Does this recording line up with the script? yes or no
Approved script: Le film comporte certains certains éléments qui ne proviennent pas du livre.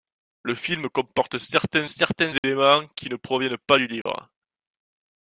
yes